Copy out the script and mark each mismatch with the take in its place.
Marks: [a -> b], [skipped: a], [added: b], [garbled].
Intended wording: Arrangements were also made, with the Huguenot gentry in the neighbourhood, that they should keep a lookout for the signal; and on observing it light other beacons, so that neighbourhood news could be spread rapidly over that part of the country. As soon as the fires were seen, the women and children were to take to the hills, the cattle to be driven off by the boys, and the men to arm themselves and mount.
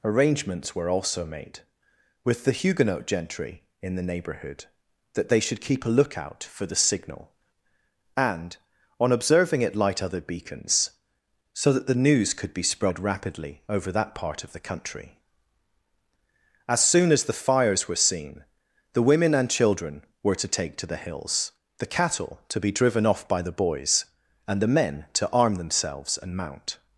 Arrangements were also made, with the Huguenot gentry in the neighbourhood, that they should keep a lookout for the signal; and on observing it light other beacons, so that [neighbourhood -> the] news could be spread rapidly over that part of the country. As soon as the fires were seen, the women and children were to take to the hills, the cattle to be driven off by the boys, and the men to arm themselves and mount.